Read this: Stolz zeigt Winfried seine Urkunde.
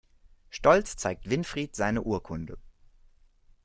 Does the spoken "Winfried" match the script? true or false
true